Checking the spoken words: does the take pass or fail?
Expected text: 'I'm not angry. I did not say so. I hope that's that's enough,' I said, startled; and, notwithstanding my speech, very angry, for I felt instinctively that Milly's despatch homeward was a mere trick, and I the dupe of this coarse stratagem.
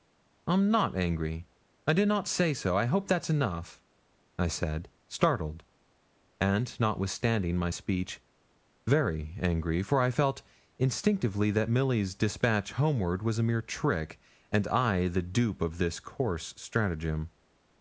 fail